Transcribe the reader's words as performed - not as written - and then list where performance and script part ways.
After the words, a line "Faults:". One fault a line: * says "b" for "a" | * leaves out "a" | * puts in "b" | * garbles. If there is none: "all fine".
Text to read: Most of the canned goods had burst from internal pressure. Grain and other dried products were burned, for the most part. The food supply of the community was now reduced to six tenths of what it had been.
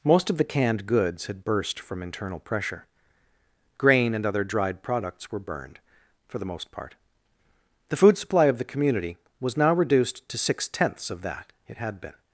Most of the canned goods had burst from internal pressure. Grain and other dried products were burned, for the most part. The food supply of the community was now reduced to six tenths of that it had been.
Faults:
* says "that" for "what"